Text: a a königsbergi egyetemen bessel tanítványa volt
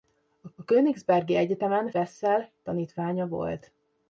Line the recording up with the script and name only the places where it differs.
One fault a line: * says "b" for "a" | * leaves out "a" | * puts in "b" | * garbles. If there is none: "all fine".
all fine